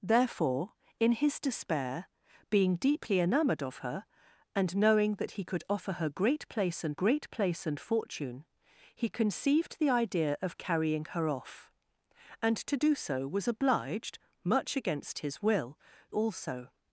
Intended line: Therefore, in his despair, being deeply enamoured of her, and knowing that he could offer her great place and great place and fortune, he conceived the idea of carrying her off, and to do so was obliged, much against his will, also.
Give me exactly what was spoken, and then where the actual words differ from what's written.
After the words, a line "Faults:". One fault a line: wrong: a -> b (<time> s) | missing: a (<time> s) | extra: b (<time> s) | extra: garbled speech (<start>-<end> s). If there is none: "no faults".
Therefore, in his despair, being deeply enamoured of her, and knowing that he could offer her great place and great place and fortune, he conceived the idea of carrying her off, and to do so was obliged, much against his will, also.
Faults:
no faults